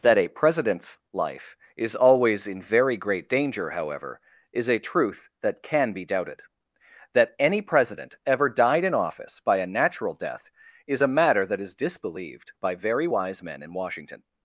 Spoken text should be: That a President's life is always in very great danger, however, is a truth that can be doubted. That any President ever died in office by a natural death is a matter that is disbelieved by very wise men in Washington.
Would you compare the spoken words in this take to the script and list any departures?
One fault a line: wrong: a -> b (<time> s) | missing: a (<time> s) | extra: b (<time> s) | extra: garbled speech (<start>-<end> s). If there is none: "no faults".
no faults